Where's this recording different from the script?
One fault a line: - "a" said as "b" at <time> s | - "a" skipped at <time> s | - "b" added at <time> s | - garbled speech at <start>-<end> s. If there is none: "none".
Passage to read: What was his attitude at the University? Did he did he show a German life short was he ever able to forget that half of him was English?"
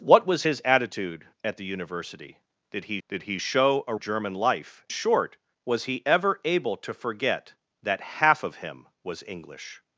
none